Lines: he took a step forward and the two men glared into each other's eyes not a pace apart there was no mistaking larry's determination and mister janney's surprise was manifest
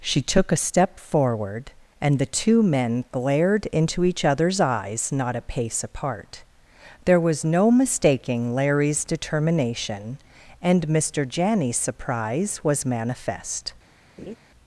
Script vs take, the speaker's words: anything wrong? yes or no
yes